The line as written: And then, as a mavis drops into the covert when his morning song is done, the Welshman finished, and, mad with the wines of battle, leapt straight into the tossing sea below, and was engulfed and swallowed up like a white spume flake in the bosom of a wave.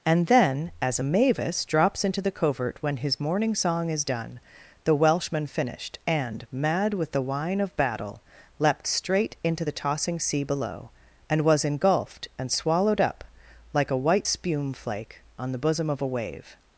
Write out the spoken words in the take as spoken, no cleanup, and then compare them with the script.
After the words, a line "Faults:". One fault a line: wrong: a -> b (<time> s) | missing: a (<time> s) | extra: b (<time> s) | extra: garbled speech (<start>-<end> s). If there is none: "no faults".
And then, as a mavis drops into the covert when his morning song is done, the Welshman finished, and, mad with the wine of battle, leapt straight into the tossing sea below, and was engulfed and swallowed up like a white spume flake on the bosom of a wave.
Faults:
wrong: wines -> wine (7.2 s)
wrong: in -> on (15.4 s)